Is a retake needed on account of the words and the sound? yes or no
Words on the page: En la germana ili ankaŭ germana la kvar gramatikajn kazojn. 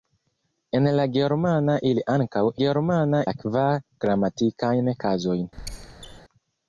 yes